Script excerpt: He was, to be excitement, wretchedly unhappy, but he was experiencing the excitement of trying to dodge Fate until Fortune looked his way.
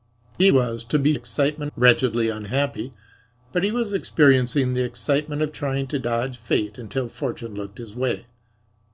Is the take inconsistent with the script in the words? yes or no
no